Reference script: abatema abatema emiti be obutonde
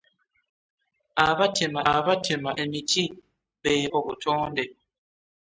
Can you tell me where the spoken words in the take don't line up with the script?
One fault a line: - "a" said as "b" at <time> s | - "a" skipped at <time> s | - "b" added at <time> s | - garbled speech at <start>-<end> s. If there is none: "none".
none